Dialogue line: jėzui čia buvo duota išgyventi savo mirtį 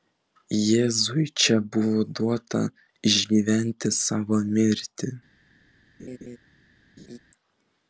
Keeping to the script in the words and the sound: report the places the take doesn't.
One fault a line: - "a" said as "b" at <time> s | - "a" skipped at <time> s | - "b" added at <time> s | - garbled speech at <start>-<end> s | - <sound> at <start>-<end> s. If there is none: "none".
- laugh at 6.0-6.4 s
- laugh at 7.0-7.2 s